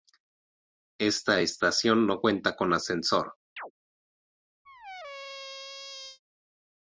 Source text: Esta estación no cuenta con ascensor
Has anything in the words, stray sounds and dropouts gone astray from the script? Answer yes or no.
yes